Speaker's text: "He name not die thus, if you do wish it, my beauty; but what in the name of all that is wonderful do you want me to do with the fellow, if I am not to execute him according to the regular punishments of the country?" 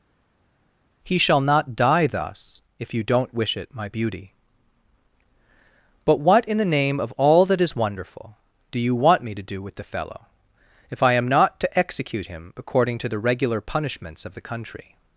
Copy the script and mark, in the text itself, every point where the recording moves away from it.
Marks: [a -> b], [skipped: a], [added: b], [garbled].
"He [name -> shall] not die thus, if you [do -> don't] wish it, my beauty; but what in the name of all that is wonderful do you want me to do with the fellow, if I am not to execute him according to the regular punishments of the country?"